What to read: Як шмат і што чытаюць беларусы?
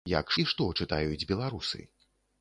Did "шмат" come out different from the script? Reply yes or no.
yes